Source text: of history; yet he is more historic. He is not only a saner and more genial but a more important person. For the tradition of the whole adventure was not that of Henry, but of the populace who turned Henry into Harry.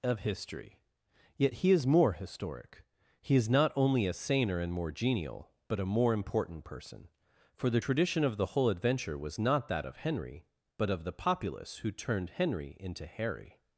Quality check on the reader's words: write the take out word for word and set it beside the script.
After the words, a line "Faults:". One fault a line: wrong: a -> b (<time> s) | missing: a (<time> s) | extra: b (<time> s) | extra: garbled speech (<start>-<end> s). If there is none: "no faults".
of history; yet he is more historic. He is not only a saner and more genial but a more important person. For the tradition of the whole adventure was not that of Henry, but of the populace who turned Henry into Harry.
Faults:
no faults